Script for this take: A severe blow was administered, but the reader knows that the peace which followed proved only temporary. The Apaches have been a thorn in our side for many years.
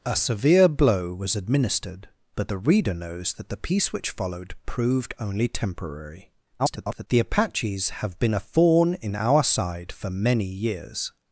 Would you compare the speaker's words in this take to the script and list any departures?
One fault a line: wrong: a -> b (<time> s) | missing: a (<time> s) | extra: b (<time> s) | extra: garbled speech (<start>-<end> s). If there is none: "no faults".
extra: garbled speech (6.6-7.1 s)